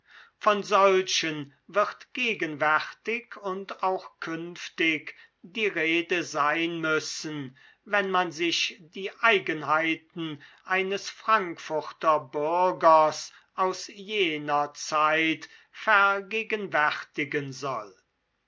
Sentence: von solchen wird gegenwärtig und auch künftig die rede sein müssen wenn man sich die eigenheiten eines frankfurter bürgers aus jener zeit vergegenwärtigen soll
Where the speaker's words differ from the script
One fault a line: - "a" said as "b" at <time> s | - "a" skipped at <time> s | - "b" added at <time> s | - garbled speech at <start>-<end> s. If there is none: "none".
none